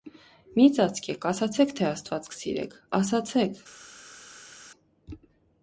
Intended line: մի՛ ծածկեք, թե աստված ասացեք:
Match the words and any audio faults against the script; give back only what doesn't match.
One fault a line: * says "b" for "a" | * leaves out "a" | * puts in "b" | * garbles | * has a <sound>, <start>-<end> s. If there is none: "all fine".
* puts in "ասացե՛ք"
* puts in "կսիրեք"